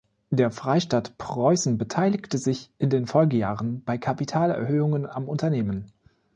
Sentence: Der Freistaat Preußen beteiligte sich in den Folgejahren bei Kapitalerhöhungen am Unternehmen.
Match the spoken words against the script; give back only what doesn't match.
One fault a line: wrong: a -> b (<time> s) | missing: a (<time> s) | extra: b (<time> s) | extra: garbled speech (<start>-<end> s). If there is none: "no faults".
no faults